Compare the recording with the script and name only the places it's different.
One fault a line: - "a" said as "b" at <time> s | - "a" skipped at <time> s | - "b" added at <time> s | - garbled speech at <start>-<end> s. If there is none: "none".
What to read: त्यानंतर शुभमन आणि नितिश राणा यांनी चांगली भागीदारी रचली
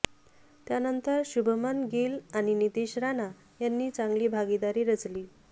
- "गिल" added at 1.9 s